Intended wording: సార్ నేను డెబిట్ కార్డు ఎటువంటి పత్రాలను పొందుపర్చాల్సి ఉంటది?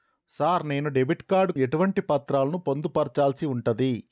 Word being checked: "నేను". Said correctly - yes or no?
yes